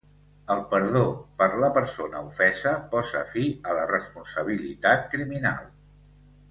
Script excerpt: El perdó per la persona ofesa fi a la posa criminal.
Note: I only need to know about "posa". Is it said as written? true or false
false